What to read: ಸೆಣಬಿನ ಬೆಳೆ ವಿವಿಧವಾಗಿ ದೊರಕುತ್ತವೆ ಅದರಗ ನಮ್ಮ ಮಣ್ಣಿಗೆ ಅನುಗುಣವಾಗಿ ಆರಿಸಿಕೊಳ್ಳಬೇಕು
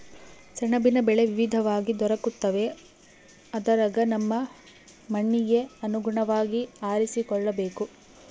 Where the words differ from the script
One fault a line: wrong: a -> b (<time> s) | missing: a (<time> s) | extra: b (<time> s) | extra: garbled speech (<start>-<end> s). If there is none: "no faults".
no faults